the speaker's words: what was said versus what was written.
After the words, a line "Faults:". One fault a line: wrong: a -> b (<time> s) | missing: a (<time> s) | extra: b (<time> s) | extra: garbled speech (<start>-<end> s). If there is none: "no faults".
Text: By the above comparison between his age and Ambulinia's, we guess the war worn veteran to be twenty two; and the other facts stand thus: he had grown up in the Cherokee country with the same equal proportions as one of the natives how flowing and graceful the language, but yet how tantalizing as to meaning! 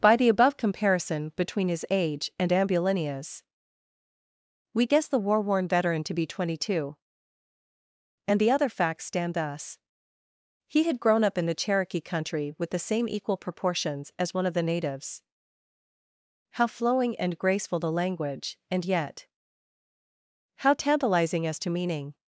By the above comparison between his age and Ambulinia's, we guess the war worn veteran to be twenty two; and the other facts stand thus: he had grown up in the Cherokee country with the same equal proportions as one of the natives how flowing and graceful the language, and yet how tantalizing as to meaning!
Faults:
wrong: but -> and (18.7 s)